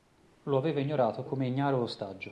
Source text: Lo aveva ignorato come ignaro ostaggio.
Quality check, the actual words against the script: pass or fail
pass